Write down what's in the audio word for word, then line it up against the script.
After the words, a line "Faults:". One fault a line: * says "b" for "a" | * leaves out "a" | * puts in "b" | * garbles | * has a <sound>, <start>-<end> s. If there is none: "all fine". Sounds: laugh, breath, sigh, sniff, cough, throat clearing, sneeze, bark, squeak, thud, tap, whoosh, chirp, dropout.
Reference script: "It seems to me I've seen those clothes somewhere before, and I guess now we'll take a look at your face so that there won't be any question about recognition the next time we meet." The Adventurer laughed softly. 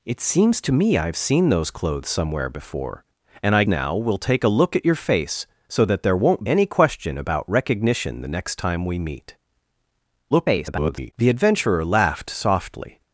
"It seems to me I've seen those clothes somewhere before, and I now we'll take a look at your face so that there won't any question about recognition the next time we meet." [garbled] The Adventurer laughed softly.
Faults:
* leaves out "guess"
* leaves out "be"
* garbles